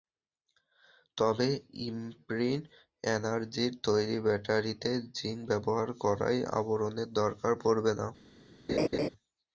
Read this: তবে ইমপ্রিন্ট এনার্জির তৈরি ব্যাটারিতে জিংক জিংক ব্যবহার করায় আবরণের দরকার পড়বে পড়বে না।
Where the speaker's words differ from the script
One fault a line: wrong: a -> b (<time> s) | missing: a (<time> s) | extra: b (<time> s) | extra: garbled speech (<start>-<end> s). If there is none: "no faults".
missing: জিংক (5.4 s)
missing: পড়বে (7.9 s)